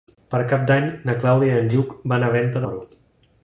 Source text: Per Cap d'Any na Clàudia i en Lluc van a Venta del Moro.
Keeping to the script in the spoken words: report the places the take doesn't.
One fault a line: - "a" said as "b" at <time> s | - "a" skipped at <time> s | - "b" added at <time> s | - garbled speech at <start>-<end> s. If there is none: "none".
- "del" skipped at 2.7 s